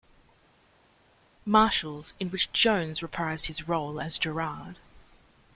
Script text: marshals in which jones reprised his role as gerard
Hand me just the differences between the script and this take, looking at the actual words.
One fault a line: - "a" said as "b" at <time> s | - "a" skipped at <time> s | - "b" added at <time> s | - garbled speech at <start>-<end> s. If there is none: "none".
none